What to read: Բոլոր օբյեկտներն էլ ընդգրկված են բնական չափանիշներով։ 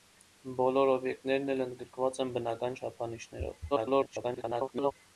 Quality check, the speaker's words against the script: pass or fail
fail